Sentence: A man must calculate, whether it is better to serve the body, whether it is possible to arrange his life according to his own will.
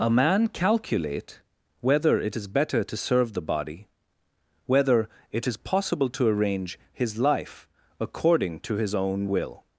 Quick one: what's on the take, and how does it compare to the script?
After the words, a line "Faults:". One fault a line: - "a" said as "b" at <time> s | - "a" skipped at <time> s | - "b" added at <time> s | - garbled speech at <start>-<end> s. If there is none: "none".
A man calculate, whether it is better to serve the body, whether it is possible to arrange his life according to his own will.
Faults:
- "must" skipped at 0.5 s